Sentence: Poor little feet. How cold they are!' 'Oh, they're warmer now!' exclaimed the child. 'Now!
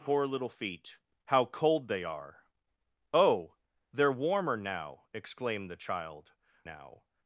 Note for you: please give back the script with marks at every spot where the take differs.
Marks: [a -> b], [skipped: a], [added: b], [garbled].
Poor little feet. How cold they are!' 'Oh, they're warmer now!' exclaimed the child. 'Now!